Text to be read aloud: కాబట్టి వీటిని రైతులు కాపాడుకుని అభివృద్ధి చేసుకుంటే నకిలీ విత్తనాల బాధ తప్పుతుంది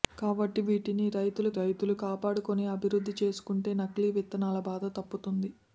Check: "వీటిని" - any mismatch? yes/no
no